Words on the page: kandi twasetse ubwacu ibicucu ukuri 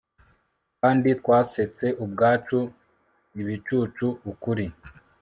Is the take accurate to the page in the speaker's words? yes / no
yes